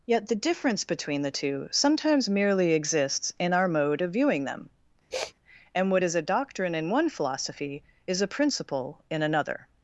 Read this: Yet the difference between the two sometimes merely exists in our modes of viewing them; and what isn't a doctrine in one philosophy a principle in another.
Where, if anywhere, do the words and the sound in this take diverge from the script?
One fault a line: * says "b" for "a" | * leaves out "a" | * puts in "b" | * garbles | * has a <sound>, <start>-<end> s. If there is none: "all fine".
* says "mode" for "modes"
* has a sniff, 5.1-5.3 s
* says "is" for "isn't"
* puts in "is"